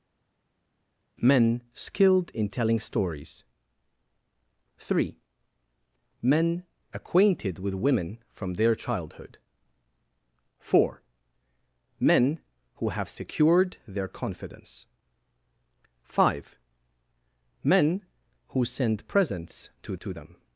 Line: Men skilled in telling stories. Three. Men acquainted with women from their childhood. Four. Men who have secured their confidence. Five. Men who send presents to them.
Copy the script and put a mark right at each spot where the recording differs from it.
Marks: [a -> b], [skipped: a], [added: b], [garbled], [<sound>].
Men skilled in telling stories. Three. Men acquainted with women from their childhood. Four. Men who have secured their confidence. Five. Men who send presents to [added: to] them.